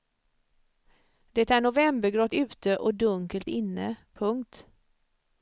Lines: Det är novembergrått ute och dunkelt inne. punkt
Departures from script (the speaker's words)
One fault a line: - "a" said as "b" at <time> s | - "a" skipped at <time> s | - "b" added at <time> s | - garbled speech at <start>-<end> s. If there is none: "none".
none